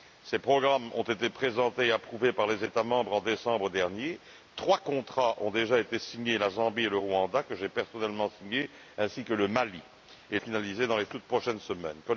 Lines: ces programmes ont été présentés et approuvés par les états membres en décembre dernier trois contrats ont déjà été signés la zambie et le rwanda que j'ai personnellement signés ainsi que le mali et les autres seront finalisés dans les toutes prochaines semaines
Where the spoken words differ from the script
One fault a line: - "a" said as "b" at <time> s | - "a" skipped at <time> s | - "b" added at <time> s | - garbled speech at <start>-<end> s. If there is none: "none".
- "les autres seront" skipped at 10.4 s